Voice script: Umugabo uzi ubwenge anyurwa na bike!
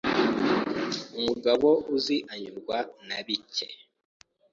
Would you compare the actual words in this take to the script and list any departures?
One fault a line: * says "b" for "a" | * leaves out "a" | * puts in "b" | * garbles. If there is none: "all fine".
* leaves out "ubwenge"